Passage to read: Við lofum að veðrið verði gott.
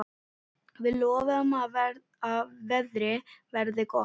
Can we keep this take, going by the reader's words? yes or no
yes